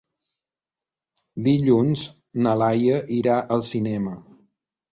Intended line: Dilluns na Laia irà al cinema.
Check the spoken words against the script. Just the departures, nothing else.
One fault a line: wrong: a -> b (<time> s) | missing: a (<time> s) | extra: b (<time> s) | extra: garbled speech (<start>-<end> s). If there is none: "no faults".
no faults